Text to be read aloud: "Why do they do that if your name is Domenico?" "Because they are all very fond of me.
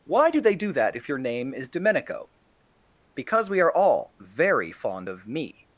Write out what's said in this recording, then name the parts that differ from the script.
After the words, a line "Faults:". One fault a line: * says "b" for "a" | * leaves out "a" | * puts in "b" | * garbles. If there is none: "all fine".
"Why do they do that if your name is Domenico?" "Because we are all very fond of me.
Faults:
* says "we" for "they"